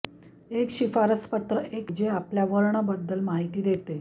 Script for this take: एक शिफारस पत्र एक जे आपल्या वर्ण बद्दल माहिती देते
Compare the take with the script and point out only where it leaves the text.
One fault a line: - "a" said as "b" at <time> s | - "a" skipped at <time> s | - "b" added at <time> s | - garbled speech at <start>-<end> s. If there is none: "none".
none